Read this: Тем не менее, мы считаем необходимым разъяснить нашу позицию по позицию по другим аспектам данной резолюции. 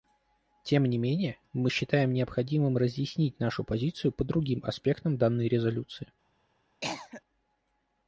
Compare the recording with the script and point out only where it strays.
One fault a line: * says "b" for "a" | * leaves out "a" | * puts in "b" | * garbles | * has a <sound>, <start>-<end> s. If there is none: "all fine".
* leaves out "позицию по"
* has a cough, 6.8-7.2 s